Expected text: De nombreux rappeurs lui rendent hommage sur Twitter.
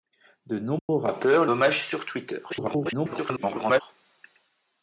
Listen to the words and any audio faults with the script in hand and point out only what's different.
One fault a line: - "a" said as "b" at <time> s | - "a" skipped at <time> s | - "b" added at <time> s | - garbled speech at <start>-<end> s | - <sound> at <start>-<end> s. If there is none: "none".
- dropout at 0.8-0.9 s
- "lui rendent" skipped at 1.4 s
- garbled speech at 2.5-3.8 s